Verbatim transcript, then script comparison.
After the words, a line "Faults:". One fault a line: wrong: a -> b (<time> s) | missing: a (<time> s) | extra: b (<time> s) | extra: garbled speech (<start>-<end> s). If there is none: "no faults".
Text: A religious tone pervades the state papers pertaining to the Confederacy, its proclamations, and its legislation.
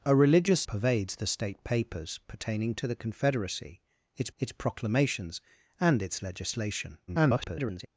A religious pervades the state papers pertaining to the Confederacy, its its proclamations, and its legislation. [garbled]
Faults:
missing: tone (0.7 s)
extra: its (4.4 s)
extra: garbled speech (7.1-7.9 s)